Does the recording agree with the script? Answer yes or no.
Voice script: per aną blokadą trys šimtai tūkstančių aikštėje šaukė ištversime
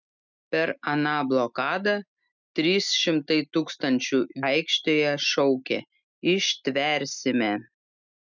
yes